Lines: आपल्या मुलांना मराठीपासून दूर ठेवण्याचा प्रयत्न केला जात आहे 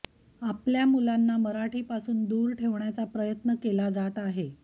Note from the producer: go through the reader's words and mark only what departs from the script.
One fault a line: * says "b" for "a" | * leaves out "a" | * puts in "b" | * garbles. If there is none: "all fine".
all fine